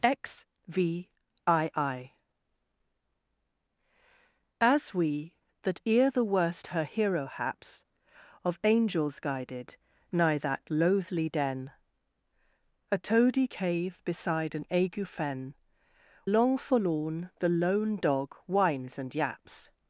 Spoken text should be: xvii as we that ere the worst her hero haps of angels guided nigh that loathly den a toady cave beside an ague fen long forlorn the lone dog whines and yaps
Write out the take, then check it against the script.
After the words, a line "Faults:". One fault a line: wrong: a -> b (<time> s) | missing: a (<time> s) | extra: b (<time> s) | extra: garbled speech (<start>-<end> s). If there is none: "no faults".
xvii as we that ere the worst her hero haps of angels guided nigh that loathly den a toady cave beside an ague fen long forlorn the lone dog whines and yaps
Faults:
no faults